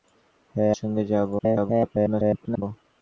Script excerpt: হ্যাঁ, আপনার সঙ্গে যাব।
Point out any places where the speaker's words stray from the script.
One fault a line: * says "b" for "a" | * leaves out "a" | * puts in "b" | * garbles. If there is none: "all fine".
* leaves out "আপনার"
* garbles